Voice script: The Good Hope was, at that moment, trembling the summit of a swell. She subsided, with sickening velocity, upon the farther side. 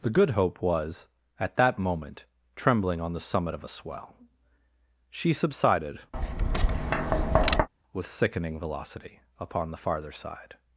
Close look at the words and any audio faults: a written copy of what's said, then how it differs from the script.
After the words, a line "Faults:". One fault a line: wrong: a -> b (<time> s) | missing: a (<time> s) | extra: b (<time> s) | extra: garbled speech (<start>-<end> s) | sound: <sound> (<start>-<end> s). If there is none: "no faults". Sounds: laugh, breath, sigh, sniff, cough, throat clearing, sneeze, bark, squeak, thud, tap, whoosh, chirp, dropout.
The Good Hope was, at that moment, trembling on the summit of a swell. She subsided, with sickening velocity, upon the farther side.
Faults:
extra: on (3.0 s)
sound: tap (6.1-7.7 s)